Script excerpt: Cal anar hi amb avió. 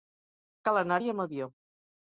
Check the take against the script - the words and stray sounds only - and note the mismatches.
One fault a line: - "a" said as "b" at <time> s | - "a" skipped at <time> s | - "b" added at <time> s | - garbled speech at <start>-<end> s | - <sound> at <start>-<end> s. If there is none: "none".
none